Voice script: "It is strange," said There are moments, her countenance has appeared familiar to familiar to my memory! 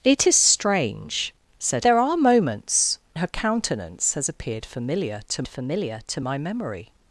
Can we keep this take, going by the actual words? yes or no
yes